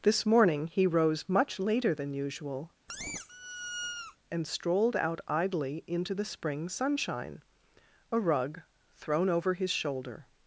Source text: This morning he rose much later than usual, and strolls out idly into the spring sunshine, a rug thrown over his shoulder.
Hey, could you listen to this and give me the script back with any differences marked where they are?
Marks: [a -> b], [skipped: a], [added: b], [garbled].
This morning he rose much later than usual, and [strolls -> strolled] out idly into the spring sunshine, a rug thrown over his shoulder.